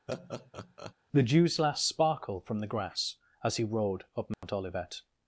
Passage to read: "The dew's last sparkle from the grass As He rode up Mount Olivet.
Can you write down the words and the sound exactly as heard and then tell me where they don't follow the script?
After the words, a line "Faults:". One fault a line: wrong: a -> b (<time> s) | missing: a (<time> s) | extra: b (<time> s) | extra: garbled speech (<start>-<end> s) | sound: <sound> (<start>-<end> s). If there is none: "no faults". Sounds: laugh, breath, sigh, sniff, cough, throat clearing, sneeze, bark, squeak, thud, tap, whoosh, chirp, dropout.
"The dew's last sparkle from the grass As He rode up Mount Olivet.
Faults:
sound: laugh (0.1-0.9 s)
sound: dropout (4.3-4.4 s)